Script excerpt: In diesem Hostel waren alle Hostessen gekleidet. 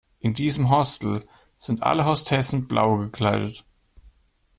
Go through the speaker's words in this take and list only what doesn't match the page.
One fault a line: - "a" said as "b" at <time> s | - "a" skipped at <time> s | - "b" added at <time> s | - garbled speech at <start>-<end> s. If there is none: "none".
- "waren" said as "sind" at 1.6 s
- "blau" added at 2.7 s